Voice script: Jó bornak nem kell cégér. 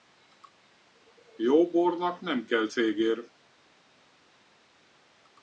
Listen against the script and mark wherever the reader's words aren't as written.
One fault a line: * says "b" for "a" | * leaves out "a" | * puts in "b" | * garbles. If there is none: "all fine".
all fine